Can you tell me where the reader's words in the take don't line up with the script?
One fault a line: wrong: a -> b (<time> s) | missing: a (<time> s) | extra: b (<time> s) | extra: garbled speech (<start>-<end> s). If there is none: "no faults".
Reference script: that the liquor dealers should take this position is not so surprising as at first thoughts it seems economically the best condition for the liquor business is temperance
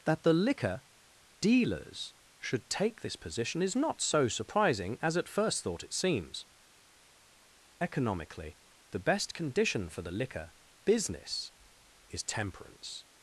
wrong: thoughts -> thought (5.6 s)